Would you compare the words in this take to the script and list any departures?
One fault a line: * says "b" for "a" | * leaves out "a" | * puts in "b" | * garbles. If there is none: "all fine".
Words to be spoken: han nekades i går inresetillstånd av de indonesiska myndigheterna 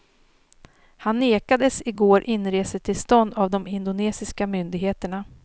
all fine